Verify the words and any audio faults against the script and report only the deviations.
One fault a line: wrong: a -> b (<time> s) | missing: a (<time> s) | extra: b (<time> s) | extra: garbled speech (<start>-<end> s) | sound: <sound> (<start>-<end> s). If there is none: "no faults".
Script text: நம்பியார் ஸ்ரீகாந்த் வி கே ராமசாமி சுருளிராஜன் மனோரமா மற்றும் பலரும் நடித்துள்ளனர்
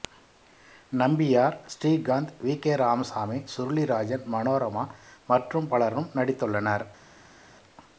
no faults